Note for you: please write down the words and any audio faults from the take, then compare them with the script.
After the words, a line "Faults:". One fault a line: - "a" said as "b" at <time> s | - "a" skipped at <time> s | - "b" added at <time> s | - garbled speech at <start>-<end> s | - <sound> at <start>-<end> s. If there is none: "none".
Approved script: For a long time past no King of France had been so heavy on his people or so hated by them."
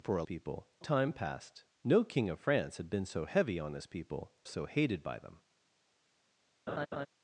For a people time past no King of France had been so heavy on his people so hated by them."
Faults:
- "long" said as "people" at 0.2 s
- "or" skipped at 4.3 s
- laugh at 6.7-7.1 s